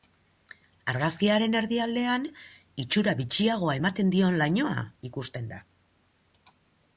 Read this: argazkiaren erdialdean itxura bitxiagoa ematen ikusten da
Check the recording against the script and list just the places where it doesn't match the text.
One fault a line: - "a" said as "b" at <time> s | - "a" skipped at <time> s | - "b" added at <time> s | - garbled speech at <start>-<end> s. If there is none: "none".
- "dion lainoa" added at 4.2 s